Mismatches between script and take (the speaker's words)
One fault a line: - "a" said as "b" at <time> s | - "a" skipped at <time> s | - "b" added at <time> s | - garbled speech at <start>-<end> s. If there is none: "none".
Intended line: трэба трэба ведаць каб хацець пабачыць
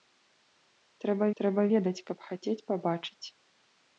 none